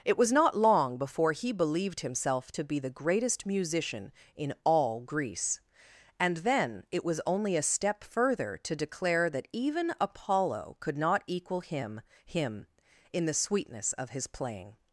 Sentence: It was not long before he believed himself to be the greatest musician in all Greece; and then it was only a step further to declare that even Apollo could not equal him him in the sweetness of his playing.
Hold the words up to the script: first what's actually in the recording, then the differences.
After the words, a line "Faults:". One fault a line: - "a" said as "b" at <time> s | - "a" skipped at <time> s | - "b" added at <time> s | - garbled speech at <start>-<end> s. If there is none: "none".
It was not long before he believed himself to be the greatest musician in all Greece; and then it was only a step further to declare that even Apollo could not equal him him in the sweetness of his playing.
Faults:
none